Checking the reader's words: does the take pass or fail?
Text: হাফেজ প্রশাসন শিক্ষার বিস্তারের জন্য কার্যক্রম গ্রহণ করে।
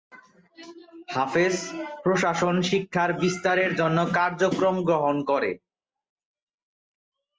pass